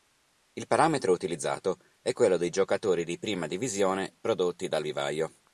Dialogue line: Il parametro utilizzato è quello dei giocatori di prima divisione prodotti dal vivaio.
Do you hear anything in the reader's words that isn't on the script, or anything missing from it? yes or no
no